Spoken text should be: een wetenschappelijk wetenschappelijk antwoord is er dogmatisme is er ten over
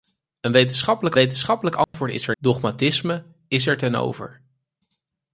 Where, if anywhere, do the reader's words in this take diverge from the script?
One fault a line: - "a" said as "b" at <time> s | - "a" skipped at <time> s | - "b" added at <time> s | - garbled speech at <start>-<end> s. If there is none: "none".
none